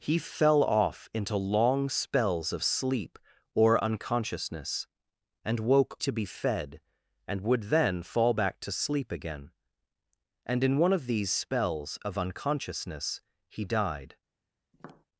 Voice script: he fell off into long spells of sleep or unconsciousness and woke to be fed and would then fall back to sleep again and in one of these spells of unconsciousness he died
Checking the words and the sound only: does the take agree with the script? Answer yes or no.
no